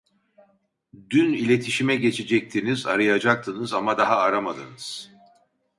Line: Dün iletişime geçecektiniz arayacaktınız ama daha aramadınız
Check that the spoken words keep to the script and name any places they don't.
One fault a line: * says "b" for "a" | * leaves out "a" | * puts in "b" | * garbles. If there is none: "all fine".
all fine